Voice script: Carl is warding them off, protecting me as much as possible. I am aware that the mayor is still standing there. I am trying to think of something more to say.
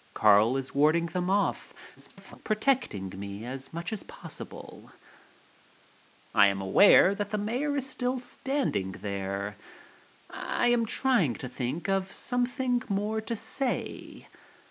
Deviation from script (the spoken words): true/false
true